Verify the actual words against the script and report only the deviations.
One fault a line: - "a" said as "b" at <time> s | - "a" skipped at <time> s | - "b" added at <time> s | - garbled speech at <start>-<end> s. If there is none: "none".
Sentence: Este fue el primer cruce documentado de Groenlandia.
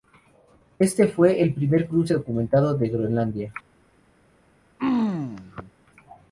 none